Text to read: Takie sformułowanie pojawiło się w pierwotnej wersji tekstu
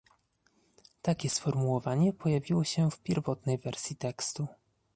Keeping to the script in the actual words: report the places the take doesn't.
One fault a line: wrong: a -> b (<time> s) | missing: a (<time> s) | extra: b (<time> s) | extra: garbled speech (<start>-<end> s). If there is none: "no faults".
no faults